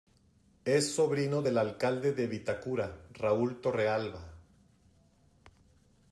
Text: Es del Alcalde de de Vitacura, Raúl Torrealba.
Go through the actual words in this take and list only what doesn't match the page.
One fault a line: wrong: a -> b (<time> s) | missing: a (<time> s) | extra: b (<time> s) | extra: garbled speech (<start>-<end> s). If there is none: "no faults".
extra: sobrino (0.9 s)
missing: de (2.3 s)